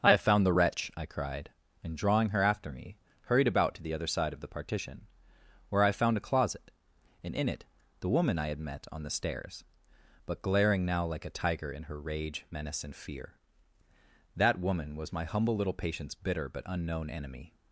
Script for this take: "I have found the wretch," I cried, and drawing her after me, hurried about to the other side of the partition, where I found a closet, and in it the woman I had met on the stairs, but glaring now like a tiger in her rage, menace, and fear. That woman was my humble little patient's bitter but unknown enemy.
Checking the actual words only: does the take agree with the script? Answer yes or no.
yes